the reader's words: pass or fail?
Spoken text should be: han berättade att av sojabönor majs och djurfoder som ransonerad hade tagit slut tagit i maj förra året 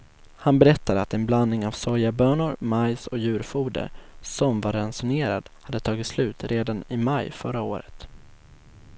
fail